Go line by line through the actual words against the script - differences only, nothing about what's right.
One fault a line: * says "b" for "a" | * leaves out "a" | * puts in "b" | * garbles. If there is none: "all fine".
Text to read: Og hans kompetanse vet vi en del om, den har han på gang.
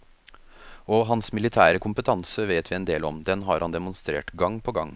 * puts in "militære"
* puts in "demonstrert gang"